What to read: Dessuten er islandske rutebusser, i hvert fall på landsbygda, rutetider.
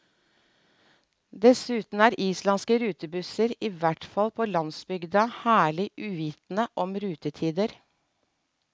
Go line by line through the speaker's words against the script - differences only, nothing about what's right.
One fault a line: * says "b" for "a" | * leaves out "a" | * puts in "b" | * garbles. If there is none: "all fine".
* puts in "herlig uvitende om"